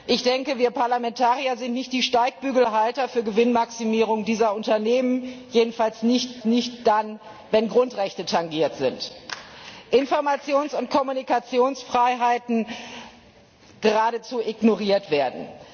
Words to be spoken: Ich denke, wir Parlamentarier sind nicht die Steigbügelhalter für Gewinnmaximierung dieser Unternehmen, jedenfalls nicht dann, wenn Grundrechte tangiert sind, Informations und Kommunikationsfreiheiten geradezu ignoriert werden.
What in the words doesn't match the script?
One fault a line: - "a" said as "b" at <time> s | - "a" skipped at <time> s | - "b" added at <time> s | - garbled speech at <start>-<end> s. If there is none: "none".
- "nicht" added at 6.4 s